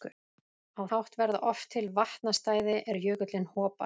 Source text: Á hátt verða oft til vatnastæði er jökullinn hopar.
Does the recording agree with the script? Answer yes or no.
yes